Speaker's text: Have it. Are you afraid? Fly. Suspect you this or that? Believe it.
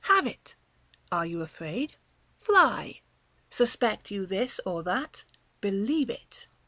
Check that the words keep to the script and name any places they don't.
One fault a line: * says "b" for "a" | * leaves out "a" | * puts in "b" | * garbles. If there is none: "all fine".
all fine